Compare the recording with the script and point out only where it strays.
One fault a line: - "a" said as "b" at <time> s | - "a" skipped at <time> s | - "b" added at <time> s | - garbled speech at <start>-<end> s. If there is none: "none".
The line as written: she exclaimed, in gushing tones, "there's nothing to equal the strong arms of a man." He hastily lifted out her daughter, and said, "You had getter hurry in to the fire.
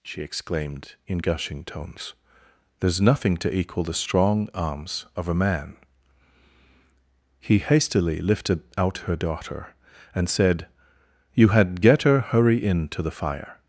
none